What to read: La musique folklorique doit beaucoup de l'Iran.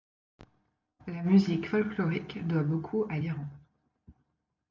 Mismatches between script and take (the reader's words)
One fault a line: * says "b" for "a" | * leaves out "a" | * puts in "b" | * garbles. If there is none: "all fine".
* says "à" for "de"